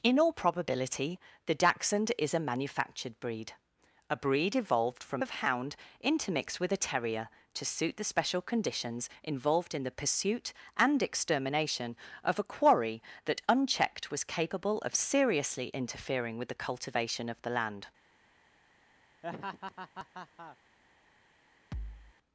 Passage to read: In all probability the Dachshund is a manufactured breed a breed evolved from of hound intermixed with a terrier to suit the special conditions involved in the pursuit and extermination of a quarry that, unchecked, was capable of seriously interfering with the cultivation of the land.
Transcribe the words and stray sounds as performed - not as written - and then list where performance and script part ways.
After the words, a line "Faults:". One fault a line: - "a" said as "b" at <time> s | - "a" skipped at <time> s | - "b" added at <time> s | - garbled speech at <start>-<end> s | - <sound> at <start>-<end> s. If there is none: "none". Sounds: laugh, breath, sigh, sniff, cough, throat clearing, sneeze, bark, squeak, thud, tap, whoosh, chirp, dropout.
In all probability the Dachshund is a manufactured breed a breed evolved from of hound intermixed with a terrier to suit the special conditions involved in the pursuit and extermination of a quarry that, unchecked, was capable of seriously interfering with the cultivation of the land.
Faults:
- laugh at 19.2-20.6 s
- thud at 21.7-22.1 s